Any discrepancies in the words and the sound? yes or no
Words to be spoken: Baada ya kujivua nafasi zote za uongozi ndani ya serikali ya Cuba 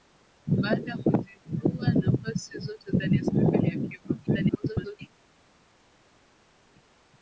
yes